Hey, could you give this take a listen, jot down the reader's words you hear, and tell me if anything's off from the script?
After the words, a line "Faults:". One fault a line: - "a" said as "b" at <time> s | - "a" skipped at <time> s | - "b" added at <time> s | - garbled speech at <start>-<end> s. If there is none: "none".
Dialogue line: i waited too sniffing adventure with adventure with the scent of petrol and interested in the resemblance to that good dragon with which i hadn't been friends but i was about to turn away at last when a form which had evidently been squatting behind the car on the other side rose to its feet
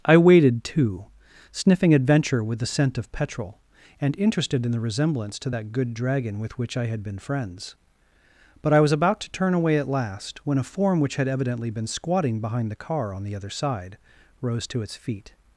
i waited too sniffing adventure with the scent of petrol and interested in the resemblance to that good dragon with which i had been friends but i was about to turn away at last when a form which had evidently been squatting behind the car on the other side rose to its feet
Faults:
- "adventure with" skipped at 2.6 s
- "hadn't" said as "had" at 6.9 s